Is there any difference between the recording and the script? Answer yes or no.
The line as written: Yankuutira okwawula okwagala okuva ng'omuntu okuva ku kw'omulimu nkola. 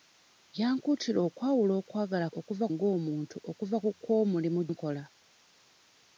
no